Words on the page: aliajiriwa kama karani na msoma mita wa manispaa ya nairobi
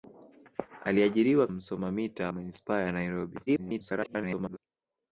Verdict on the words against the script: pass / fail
fail